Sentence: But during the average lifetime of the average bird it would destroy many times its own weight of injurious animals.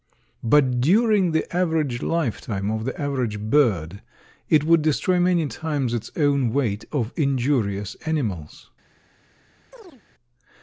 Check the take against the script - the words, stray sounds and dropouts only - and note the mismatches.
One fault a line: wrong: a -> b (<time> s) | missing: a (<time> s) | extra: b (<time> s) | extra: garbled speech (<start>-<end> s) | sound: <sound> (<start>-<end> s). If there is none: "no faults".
sound: chirp (9.7-10.0 s)